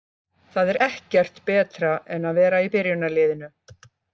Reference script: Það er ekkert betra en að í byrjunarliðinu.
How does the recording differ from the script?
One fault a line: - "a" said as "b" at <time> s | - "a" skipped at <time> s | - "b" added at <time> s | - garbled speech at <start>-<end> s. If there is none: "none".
- "vera" added at 2.4 s